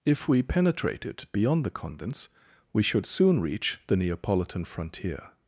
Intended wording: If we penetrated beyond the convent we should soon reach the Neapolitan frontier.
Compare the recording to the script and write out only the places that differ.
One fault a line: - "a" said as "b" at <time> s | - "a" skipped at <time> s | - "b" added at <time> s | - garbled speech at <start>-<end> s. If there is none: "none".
- "convent" said as "convents" at 1.7 s